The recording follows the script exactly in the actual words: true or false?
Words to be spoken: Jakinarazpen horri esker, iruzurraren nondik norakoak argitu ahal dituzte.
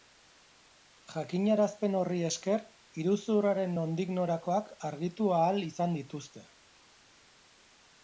false